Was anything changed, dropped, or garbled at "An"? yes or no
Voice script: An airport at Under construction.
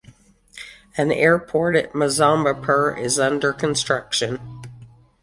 no